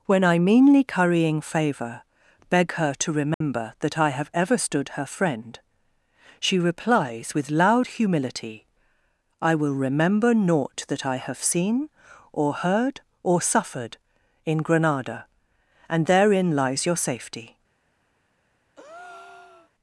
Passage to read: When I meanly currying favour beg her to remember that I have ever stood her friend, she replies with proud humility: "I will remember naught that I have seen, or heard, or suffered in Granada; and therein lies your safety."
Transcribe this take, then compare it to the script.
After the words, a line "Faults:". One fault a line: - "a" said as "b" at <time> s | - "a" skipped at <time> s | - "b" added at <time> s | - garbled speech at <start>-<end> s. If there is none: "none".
When I meanly currying favour beg her to remember that I have ever stood her friend, she replies with loud humility: "I will remember naught that I have seen, or heard, or suffered in Granada; and therein lies your safety."
Faults:
- "proud" said as "loud" at 7.5 s